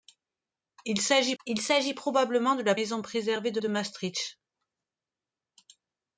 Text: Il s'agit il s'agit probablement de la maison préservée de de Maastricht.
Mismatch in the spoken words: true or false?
false